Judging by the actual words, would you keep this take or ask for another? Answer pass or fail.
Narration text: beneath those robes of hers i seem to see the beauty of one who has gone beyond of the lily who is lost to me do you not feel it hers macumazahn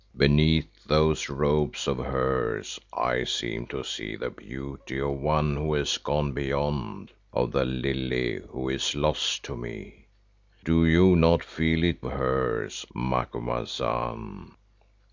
pass